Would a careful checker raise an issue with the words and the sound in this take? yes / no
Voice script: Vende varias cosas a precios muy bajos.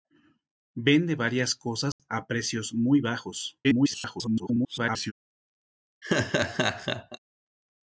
yes